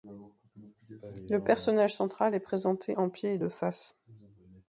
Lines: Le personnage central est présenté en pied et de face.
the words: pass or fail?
pass